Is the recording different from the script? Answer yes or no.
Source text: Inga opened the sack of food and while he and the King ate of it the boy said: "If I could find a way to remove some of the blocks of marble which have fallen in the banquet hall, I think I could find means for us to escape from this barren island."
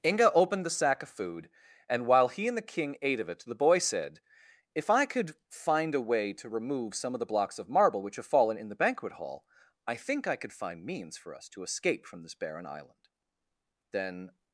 yes